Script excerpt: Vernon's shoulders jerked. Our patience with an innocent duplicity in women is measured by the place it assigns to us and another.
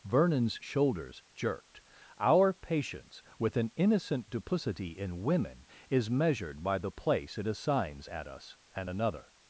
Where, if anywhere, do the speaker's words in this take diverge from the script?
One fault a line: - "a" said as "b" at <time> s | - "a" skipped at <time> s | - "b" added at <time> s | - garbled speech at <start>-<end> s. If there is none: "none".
- "to" said as "at" at 8.1 s